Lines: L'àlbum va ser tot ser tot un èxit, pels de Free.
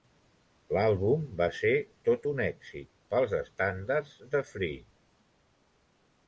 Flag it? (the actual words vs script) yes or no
yes